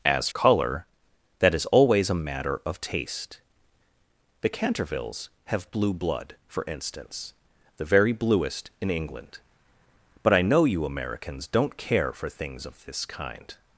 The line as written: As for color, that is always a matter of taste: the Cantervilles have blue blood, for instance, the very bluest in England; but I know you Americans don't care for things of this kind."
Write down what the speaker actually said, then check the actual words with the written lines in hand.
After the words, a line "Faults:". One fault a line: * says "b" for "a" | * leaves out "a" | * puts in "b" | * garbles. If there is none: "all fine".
As color, that is always a matter of taste: the Cantervilles have blue blood, for instance, the very bluest in England; but I know you Americans don't care for things of this kind."
Faults:
* leaves out "for"